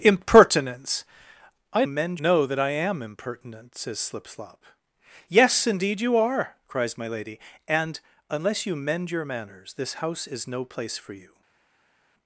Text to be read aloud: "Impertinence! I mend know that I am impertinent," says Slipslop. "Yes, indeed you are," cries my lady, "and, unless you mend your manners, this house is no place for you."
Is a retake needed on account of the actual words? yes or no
no